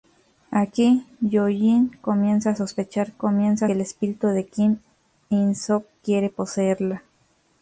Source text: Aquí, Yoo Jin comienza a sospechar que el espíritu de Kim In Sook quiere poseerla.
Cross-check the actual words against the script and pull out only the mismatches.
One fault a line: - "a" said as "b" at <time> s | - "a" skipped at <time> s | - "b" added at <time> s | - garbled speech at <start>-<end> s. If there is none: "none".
- "que" said as "comienza" at 3.2 s